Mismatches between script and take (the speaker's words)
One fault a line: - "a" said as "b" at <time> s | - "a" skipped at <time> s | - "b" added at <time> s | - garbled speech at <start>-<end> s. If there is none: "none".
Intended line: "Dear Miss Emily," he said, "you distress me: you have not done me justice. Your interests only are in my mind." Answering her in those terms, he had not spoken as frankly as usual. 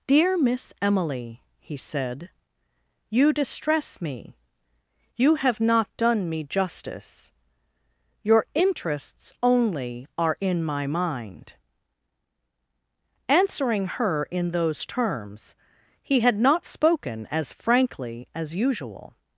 none